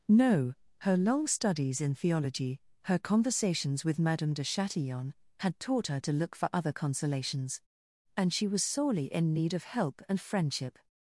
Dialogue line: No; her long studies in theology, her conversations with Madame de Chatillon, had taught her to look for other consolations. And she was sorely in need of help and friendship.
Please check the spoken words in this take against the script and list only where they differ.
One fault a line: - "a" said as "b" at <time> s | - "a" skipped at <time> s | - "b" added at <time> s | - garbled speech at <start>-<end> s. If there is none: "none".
none